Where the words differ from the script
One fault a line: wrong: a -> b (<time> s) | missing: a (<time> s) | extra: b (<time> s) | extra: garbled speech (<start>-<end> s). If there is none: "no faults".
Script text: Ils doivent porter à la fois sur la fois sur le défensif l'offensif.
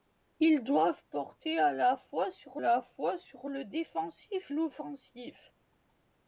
no faults